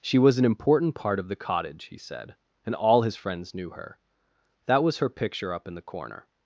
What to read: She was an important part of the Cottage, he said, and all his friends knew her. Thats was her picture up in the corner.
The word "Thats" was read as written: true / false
false